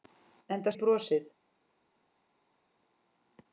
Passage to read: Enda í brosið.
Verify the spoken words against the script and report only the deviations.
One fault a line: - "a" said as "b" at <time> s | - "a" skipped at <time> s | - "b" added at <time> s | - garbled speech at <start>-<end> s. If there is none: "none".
none